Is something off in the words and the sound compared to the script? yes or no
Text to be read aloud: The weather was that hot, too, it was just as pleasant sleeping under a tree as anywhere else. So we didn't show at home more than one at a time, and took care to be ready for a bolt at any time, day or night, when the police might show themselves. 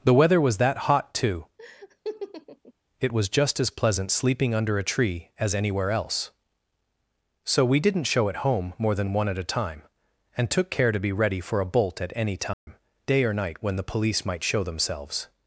yes